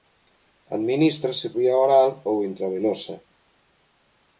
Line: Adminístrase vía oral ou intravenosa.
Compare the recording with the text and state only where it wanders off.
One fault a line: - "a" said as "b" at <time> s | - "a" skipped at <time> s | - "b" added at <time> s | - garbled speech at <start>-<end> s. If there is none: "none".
none